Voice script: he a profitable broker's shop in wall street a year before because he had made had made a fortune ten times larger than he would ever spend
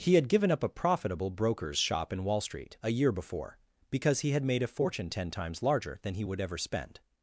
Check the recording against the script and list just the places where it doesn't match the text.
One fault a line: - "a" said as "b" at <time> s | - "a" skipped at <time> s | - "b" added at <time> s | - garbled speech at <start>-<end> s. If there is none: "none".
- "had given up" added at 0.1 s
- "had made" skipped at 4.6 s